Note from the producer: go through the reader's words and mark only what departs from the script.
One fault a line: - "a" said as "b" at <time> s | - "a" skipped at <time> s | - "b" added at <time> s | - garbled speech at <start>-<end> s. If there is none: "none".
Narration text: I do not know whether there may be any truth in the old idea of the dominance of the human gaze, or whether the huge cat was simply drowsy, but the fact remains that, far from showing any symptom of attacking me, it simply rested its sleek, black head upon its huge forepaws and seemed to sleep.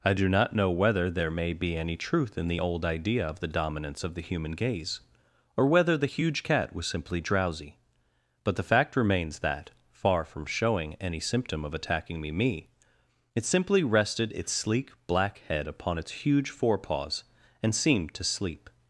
- "me" added at 12.3 s